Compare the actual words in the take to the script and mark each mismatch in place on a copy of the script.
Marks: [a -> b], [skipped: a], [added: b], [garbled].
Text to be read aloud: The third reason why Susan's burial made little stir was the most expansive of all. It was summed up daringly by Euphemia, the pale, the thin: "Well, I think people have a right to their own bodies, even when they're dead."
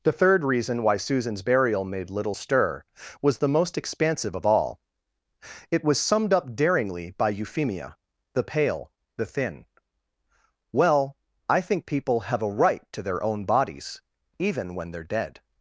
The third reason why Susan's burial made little stir was the most expansive of all. It was summed up daringly by Euphemia, the pale, the thin: "Well, I think people have a right to their own bodies, even when they're dead."